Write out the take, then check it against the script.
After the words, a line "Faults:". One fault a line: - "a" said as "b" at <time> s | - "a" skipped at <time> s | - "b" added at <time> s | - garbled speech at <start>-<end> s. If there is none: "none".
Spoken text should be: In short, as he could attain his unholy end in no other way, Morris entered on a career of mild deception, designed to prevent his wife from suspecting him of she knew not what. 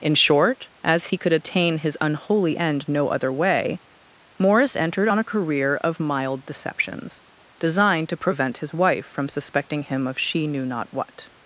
In short, as he could attain his unholy end no other way, Morris entered on a career of mild deceptions, designed to prevent his wife from suspecting him of she knew not what.
Faults:
- "in" skipped at 2.9 s
- "deception" said as "deceptions" at 6.4 s